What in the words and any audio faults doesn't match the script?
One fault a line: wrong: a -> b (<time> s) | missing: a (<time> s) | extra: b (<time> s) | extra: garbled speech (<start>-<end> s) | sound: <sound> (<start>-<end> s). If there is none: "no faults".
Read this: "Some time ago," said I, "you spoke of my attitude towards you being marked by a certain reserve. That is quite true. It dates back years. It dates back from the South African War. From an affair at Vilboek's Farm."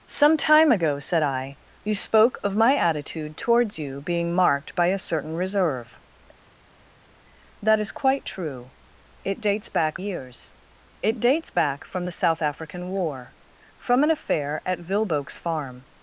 no faults